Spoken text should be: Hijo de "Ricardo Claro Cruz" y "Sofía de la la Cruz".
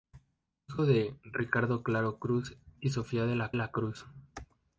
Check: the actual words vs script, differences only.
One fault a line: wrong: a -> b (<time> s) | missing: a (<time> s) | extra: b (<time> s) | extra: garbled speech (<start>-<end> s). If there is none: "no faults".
no faults